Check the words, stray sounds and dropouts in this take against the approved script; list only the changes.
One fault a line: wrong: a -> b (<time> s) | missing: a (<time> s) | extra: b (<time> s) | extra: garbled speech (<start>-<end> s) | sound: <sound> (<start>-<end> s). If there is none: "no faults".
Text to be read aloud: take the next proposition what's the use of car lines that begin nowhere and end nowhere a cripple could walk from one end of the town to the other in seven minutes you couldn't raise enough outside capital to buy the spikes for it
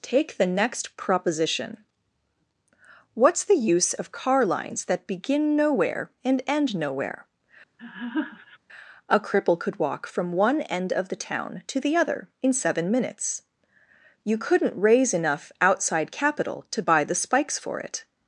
sound: laugh (7.8-8.6 s)